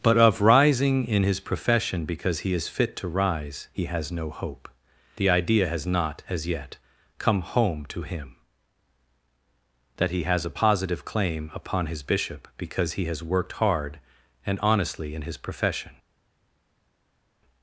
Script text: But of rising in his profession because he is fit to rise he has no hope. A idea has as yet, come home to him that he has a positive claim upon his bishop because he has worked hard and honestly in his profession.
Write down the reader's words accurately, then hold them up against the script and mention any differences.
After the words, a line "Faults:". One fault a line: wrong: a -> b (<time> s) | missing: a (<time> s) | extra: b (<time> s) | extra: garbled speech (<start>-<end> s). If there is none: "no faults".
But of rising in his profession because he is fit to rise he has no hope. The idea has not, as yet, come home to him that he has a positive claim upon his bishop because he has worked hard and honestly in his profession.
Faults:
wrong: A -> The (5.2 s)
extra: not (5.8 s)